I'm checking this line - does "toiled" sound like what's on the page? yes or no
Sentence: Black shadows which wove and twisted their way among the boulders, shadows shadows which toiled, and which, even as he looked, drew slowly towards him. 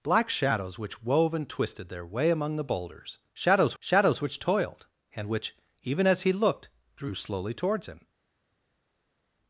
yes